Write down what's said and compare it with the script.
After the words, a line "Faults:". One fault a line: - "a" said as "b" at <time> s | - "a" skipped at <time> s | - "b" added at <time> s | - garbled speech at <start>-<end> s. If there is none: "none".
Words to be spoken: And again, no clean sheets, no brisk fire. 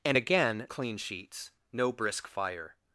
And again, clean sheets, no brisk fire.
Faults:
- "no" skipped at 0.7 s